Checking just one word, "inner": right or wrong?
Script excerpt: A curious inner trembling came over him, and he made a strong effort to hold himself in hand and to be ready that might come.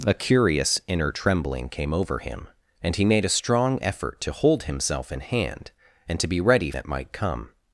right